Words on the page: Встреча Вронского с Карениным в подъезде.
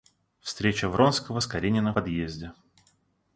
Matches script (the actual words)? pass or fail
fail